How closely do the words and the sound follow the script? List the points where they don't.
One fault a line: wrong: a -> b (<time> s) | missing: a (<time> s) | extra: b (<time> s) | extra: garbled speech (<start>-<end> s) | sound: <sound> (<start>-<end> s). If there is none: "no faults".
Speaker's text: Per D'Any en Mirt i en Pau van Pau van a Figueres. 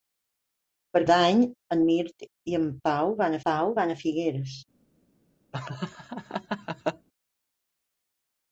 sound: laugh (5.5-7.1 s)